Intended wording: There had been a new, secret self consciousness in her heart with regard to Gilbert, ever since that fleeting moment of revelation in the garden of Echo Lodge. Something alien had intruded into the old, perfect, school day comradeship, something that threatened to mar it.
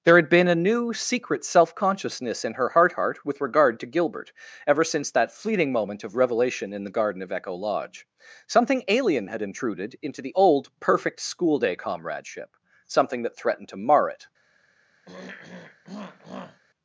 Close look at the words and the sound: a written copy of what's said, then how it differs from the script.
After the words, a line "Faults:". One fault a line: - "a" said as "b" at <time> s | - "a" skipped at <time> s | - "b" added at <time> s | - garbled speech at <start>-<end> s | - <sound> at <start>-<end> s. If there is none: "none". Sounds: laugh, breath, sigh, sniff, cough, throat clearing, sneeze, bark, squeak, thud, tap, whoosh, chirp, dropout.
There had been a new, secret self consciousness in her heart heart with regard to Gilbert, ever since that fleeting moment of revelation in the garden of Echo Lodge. Something alien had intruded into the old, perfect, school day comradeship, something that threatened to mar it.
Faults:
- "heart" added at 2.9 s
- throat clearing at 15.1-16.6 s